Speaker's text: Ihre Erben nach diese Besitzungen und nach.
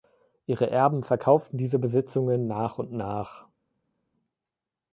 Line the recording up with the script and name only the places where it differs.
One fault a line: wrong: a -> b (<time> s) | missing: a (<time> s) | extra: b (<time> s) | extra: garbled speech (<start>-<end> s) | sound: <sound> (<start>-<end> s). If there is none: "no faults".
wrong: nach -> verkauften (1.0 s)
extra: nach (2.5 s)